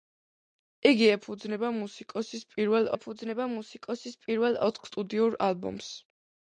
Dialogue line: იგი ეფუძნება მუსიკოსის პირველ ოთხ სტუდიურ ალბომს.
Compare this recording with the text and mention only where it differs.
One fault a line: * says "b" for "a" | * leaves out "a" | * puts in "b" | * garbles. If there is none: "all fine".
* puts in "ეფუძნება მუსიკოსის პირველ"